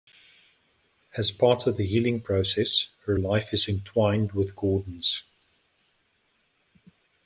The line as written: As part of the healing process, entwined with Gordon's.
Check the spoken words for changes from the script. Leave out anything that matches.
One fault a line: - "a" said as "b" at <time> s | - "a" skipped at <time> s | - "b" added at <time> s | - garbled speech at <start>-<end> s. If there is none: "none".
- "her life is" added at 3.0 s